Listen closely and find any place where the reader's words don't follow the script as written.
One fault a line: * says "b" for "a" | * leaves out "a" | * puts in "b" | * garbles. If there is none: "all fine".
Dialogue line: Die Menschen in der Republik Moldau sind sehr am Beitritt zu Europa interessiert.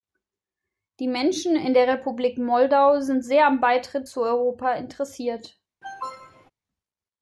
all fine